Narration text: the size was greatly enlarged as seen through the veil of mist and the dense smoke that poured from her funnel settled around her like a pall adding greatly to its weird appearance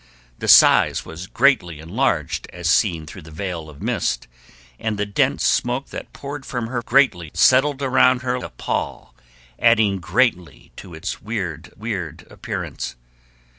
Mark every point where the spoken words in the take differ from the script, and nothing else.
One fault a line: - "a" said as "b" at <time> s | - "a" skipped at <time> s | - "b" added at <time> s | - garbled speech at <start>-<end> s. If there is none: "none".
- "funnel" said as "greatly" at 6.8 s
- "like" skipped at 8.4 s
- "weird" added at 11.8 s